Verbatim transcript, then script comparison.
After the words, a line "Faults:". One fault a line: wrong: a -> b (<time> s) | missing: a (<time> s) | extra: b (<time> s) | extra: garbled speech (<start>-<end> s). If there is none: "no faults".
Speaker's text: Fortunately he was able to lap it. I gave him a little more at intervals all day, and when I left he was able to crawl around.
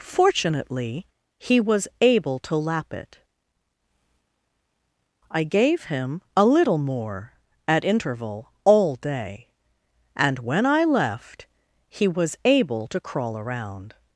Fortunately he was able to lap it. I gave him a little more at interval all day, and when I left he was able to crawl around.
Faults:
wrong: intervals -> interval (7.8 s)